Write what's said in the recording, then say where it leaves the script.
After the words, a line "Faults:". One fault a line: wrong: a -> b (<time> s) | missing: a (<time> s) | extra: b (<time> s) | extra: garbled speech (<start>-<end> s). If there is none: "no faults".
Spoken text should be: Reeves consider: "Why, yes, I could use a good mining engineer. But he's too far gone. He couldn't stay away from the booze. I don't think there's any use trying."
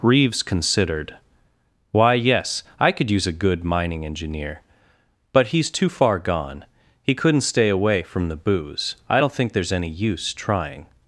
Reeves considered: "Why, yes, I could use a good mining engineer. But he's too far gone. He couldn't stay away from the booze. I don't think there's any use trying."
Faults:
wrong: consider -> considered (0.4 s)